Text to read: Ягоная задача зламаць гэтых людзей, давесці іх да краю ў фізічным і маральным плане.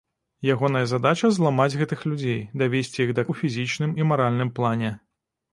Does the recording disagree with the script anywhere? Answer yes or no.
yes